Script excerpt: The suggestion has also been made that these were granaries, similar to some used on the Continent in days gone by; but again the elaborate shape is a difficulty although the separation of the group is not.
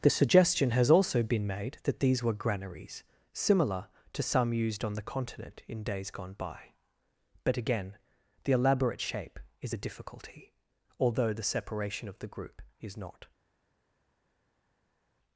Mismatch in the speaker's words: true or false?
false